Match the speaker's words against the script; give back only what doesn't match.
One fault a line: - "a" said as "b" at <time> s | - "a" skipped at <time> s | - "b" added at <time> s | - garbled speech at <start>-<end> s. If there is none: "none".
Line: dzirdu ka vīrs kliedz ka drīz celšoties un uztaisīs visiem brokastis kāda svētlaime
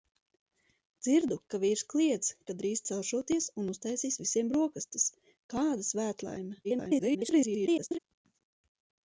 - garbled speech at 6.6-8.0 s